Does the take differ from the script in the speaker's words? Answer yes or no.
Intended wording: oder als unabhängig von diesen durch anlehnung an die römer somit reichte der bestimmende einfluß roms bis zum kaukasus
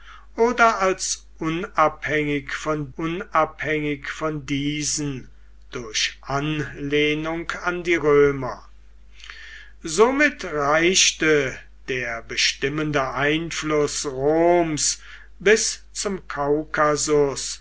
yes